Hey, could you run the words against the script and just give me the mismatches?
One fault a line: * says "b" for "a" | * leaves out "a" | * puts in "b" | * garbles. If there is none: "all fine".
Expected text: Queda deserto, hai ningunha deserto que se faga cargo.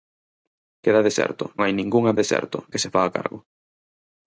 all fine